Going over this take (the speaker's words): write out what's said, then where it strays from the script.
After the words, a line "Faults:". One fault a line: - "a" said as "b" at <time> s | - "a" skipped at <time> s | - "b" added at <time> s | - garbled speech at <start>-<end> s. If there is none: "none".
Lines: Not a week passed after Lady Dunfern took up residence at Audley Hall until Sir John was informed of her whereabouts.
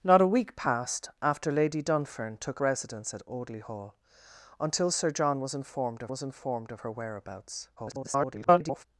Not a week passed after Lady Dunfern took residence at Audley Hall until Sir John was informed of was informed of her whereabouts. [garbled]
Faults:
- "up" skipped at 2.6 s
- "was informed of" added at 6.1 s
- garbled speech at 7.8-8.8 s